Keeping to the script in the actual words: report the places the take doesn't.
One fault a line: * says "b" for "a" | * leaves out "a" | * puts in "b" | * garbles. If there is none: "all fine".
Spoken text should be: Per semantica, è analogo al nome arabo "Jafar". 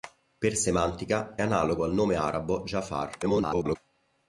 * leaves out "è"
* garbles